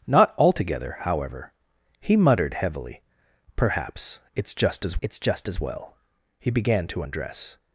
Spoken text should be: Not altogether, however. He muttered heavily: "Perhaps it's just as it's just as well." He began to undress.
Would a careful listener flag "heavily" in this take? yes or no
no